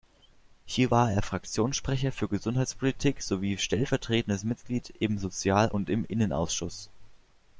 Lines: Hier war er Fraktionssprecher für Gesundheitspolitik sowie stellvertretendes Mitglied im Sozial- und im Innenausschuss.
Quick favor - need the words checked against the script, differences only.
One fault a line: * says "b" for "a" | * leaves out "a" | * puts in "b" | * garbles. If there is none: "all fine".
all fine